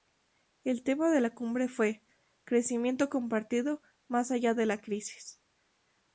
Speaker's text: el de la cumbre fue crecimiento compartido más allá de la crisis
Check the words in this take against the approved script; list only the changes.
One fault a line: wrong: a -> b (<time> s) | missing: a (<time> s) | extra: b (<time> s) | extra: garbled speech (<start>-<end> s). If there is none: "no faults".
extra: tema (0.8 s)